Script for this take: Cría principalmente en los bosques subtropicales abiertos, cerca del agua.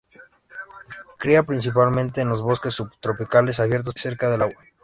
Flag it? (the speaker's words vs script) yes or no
no